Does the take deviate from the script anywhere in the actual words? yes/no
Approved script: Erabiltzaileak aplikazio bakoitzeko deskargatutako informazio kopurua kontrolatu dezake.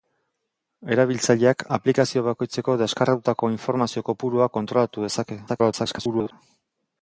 yes